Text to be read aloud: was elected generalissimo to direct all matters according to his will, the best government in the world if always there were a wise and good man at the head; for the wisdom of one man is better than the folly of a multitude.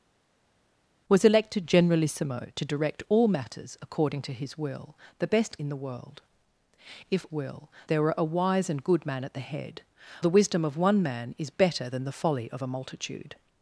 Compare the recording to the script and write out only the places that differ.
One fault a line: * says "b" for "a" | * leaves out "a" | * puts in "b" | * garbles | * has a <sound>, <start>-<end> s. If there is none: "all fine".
* leaves out "government"
* says "will" for "always"
* leaves out "for"